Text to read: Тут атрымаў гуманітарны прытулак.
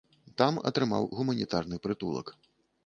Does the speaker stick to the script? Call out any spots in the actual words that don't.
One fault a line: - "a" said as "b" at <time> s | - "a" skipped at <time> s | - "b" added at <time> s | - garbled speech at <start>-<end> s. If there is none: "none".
- "Тут" said as "Там" at 0.4 s